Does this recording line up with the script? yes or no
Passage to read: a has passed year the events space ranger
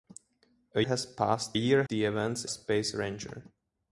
yes